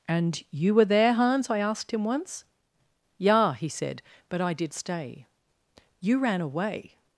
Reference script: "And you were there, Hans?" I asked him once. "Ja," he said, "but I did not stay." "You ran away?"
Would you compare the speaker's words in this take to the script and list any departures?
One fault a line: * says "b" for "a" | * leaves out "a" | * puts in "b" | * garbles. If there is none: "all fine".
* leaves out "not"